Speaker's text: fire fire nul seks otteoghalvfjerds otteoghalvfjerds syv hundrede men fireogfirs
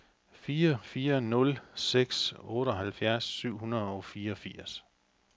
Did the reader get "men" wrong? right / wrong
wrong